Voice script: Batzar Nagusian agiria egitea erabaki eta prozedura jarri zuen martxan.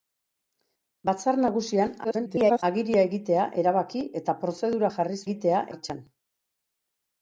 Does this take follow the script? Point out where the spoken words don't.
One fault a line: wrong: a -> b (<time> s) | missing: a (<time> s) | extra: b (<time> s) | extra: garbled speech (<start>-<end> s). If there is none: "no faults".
extra: garbled speech (2.0-2.6 s)
wrong: zuen -> egitea (5.3 s)